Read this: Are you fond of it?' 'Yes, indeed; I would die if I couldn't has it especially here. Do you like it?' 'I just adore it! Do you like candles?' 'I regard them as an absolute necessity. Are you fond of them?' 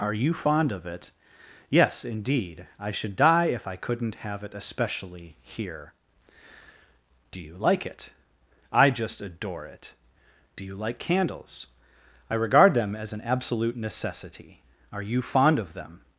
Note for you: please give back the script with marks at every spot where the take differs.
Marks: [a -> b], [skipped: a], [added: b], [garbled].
Are you fond of it?' 'Yes, indeed; I [would -> should] die if I couldn't [has -> have] it especially here. Do you like it?' 'I just adore it! Do you like candles?' 'I regard them as an absolute necessity. Are you fond of them?'